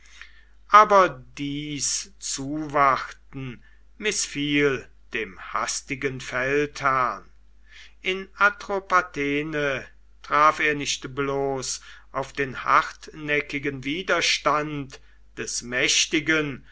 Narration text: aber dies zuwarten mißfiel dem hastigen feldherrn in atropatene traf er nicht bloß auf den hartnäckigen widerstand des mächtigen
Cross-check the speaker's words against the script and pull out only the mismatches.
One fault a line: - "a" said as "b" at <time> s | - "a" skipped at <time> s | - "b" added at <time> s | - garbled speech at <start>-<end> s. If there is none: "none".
none